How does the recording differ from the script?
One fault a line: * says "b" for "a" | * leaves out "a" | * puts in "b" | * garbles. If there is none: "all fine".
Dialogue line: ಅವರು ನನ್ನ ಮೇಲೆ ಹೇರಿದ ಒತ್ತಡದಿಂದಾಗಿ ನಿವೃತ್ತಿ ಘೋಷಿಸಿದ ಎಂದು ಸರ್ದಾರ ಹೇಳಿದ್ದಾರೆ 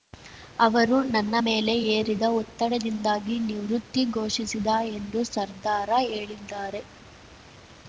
all fine